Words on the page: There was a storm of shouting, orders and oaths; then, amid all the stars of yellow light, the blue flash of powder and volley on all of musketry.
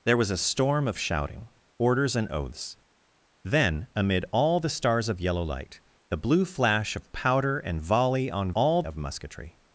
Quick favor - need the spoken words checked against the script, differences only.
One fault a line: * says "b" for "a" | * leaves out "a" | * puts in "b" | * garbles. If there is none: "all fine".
all fine